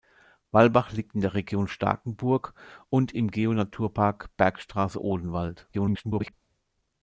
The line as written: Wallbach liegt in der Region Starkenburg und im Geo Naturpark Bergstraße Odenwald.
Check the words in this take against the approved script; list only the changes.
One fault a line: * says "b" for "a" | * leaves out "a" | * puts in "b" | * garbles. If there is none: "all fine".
* garbles